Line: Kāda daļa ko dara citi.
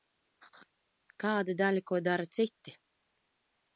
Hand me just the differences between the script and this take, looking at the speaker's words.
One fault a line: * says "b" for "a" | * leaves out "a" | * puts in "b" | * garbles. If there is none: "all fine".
all fine